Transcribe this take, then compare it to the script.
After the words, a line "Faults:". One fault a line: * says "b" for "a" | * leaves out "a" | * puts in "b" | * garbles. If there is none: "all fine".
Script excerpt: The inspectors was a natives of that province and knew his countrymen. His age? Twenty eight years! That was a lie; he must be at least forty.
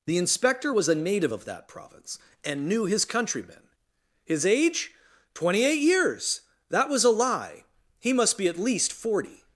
The inspector was a native of that province and knew his countrymen. His age? Twenty eight years! That was a lie; he must be at least forty.
Faults:
* says "inspector" for "inspectors"
* says "native" for "natives"